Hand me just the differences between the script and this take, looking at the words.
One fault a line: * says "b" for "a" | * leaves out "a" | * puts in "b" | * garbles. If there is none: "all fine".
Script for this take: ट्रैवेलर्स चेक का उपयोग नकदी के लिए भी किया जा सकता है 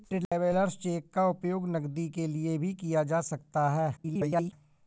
* garbles